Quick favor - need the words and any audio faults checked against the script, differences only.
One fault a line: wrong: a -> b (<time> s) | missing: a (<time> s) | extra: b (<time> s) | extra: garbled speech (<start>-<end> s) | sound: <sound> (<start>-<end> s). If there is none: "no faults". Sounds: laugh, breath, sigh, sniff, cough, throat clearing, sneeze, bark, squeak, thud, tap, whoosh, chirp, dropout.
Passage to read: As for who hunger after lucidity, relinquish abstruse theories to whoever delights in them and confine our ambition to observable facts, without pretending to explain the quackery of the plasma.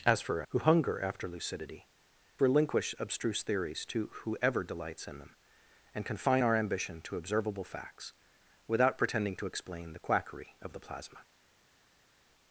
no faults